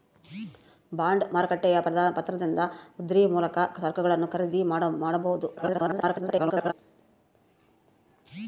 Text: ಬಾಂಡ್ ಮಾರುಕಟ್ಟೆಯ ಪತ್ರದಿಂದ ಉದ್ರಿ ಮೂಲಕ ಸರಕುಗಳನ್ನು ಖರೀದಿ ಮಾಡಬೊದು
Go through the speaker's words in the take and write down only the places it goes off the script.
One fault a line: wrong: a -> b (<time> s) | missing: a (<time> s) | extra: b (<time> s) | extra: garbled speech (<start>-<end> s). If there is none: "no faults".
extra: garbled speech (5.6-6.7 s)